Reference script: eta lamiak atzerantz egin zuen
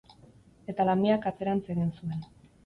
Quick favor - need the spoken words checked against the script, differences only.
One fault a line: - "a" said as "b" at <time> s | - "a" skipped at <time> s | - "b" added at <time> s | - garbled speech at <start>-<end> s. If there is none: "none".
none